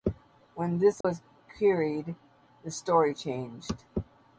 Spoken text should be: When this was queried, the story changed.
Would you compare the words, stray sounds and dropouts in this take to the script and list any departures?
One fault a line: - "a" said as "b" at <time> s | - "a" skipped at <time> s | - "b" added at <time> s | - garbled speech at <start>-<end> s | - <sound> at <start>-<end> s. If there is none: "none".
- dropout at 1.0-1.0 s